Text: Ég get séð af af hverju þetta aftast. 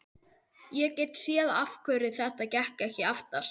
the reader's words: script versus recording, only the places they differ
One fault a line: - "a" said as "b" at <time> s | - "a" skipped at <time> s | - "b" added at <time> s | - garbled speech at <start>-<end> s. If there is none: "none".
- "af" skipped at 1.8 s
- "gekk ekki" added at 2.6 s